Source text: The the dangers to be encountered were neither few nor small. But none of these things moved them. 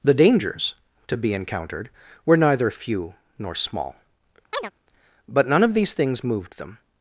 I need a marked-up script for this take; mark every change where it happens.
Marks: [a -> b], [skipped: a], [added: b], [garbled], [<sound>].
The [skipped: the] dangers to be encountered were neither few nor small. [chirp] But none of these things moved them.